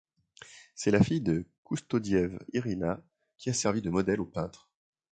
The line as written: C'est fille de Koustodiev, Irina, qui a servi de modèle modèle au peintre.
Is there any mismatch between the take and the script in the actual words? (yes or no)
yes